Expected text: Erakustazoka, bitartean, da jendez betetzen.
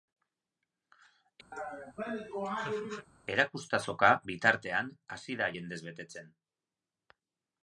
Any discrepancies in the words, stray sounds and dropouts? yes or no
yes